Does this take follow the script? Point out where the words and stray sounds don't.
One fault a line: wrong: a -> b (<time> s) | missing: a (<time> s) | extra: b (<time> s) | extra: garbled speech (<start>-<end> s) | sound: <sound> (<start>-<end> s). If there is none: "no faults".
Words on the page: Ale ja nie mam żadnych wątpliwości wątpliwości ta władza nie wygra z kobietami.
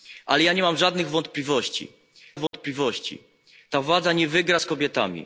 sound: dropout (2.5-2.5 s)